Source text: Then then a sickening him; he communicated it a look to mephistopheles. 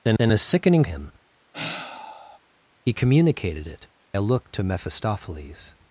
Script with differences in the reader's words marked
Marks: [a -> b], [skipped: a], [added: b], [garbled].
Then then a sickening him; he communicated it a look to mephistopheles.